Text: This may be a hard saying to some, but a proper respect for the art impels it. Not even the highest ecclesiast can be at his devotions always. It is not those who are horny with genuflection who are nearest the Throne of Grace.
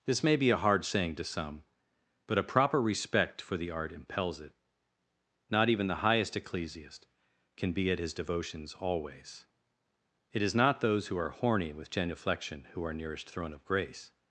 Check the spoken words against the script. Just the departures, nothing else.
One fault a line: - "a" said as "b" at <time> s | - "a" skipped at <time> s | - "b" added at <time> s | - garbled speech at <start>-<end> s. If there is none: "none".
- "the" skipped at 13.3 s